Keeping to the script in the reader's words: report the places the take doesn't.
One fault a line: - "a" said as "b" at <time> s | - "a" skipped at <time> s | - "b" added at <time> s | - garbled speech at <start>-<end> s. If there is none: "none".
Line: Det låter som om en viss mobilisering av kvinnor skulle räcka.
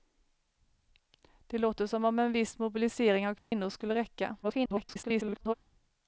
- garbled speech at 4.4-5.5 s